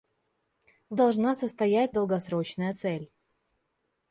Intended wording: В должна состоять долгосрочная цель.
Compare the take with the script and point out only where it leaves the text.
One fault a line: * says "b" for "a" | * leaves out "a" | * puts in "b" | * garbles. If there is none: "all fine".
all fine